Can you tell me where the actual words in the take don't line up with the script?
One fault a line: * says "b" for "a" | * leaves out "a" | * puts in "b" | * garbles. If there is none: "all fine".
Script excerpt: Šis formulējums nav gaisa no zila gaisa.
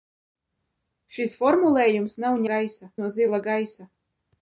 all fine